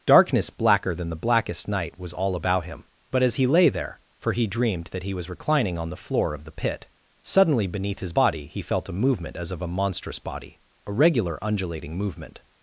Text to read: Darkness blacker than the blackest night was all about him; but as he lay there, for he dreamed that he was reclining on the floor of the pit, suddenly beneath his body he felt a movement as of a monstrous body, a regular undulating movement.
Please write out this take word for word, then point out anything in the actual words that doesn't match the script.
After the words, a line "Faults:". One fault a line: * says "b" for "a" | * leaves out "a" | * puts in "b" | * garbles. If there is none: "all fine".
Darkness blacker than the blackest night was all about him; but as he lay there, for he dreamed that he was reclining on the floor of the pit, suddenly beneath his body he felt a movement as of a monstrous body, a regular undulating movement.
Faults:
all fine